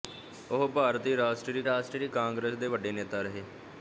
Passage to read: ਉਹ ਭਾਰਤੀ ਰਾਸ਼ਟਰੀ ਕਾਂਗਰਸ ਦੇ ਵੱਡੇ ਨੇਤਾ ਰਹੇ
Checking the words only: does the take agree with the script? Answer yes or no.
no